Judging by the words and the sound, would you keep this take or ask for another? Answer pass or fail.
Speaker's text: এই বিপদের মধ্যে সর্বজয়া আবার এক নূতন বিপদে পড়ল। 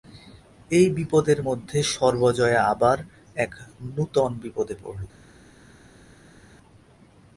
pass